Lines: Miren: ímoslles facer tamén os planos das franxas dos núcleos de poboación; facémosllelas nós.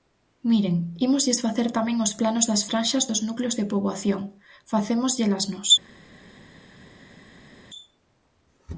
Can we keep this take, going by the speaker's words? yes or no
yes